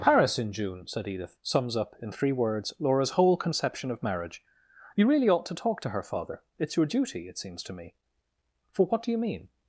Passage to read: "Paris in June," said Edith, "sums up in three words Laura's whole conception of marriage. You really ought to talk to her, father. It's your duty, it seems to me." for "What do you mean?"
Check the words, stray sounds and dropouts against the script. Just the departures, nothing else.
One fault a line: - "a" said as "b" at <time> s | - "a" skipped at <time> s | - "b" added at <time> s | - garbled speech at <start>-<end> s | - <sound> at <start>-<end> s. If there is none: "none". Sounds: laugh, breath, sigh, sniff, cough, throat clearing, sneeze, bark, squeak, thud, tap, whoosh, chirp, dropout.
none